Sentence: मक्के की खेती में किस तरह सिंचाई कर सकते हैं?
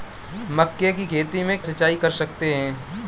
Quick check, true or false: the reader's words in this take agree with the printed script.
false